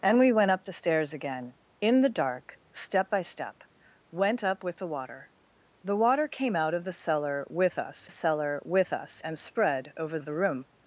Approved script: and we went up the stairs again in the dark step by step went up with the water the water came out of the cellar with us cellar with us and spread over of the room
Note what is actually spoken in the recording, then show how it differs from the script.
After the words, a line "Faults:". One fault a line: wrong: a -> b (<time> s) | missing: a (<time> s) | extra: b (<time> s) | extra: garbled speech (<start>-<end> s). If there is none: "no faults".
and we went up the stairs again in the dark step by step went up with the water the water came out of the cellar with us cellar with us and spread over of the room
Faults:
no faults